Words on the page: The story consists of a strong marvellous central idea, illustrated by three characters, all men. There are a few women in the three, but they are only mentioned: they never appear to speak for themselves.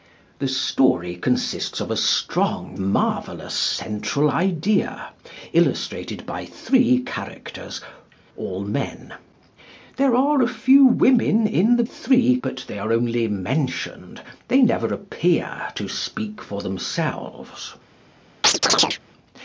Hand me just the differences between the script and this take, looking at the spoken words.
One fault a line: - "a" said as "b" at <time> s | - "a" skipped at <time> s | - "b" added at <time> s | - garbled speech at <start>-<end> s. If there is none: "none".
none